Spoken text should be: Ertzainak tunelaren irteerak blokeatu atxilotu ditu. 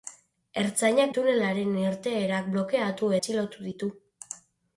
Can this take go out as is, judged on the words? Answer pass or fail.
pass